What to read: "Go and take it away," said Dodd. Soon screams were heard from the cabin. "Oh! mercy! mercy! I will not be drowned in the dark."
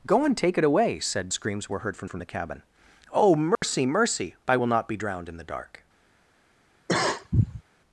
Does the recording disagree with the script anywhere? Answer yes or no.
yes